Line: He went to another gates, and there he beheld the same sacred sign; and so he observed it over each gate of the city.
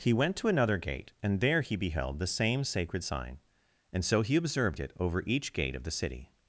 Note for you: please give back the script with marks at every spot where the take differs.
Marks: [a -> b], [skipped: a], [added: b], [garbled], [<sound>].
He went to another [gates, -> gate] and there he beheld the same sacred sign; and so he observed it over each gate of the city.